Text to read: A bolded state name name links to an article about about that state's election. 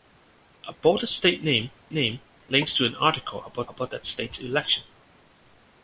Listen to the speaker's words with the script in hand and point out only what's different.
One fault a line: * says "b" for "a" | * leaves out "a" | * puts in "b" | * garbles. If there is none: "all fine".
all fine